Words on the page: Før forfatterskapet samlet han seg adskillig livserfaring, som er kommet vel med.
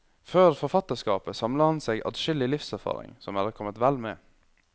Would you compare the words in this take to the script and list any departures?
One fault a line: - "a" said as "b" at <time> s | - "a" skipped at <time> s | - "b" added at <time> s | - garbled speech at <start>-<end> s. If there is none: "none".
none